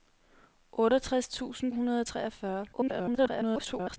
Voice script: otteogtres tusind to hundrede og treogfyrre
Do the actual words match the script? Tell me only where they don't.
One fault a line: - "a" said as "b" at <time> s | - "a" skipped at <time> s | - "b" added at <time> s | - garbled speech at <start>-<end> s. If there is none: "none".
- "to" skipped at 1.7 s
- garbled speech at 2.7-4.0 s